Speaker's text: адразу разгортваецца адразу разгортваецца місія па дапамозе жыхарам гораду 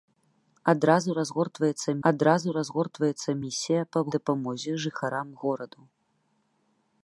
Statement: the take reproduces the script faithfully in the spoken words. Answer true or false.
true